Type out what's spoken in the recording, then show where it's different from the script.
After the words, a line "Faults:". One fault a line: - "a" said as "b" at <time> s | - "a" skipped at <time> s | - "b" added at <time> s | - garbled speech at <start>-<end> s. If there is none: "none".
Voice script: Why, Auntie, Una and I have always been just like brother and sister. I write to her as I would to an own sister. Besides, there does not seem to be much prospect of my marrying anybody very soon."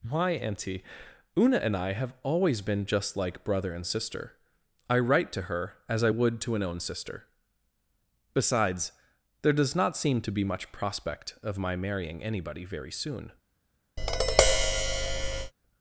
Why, Auntie, Una and I have always been just like brother and sister. I write to her as I would to an own sister. Besides, there does not seem to be much prospect of my marrying anybody very soon."
Faults:
none